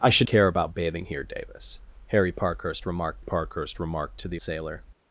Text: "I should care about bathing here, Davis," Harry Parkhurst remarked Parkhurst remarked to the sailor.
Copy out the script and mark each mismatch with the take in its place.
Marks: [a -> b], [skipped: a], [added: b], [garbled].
"I should care about bathing here, Davis," Harry Parkhurst remarked Parkhurst remarked to the sailor.